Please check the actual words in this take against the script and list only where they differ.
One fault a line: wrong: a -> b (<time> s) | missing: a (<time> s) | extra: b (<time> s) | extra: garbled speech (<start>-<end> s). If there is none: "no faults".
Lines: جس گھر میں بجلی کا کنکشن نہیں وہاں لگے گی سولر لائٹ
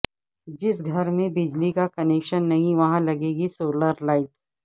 no faults